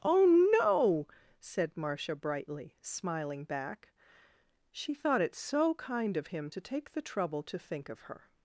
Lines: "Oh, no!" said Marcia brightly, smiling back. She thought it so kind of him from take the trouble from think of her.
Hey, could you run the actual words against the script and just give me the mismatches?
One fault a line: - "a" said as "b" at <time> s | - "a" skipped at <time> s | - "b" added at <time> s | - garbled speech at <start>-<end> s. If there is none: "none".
- "from" said as "to" at 6.5 s
- "from" said as "to" at 7.4 s